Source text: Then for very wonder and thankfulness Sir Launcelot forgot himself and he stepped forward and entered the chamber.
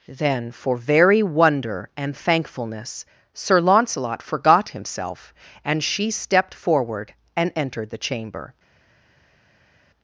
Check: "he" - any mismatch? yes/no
yes